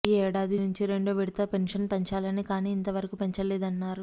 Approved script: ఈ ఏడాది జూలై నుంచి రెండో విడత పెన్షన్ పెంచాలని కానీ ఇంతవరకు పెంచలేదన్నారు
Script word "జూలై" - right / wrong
wrong